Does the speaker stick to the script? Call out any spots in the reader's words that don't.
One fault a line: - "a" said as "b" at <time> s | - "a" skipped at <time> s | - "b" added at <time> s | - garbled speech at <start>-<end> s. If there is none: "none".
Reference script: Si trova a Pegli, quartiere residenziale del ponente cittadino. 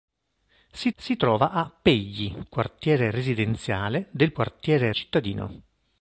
- "si" added at 1.0 s
- "ponente" said as "quartiere" at 4.3 s